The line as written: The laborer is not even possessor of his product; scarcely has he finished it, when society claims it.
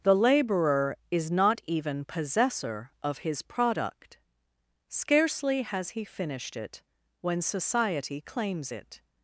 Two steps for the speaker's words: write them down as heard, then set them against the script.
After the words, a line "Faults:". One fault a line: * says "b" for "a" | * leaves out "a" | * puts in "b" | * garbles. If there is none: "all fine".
The laborer is not even possessor of his product; scarcely has he finished it, when society claims it.
Faults:
all fine